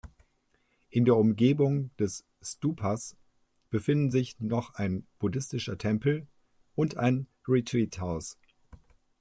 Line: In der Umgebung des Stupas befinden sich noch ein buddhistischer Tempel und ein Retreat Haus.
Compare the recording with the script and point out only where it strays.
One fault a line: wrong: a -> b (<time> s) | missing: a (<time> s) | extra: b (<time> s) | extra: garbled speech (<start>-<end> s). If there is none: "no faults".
no faults